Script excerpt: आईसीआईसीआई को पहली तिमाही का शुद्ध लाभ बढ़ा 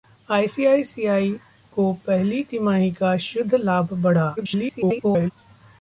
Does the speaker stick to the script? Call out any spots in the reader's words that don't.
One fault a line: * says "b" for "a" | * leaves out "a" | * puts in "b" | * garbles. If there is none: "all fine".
* garbles